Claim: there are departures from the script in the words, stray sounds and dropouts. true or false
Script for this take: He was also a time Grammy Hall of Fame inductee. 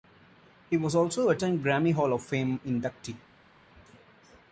false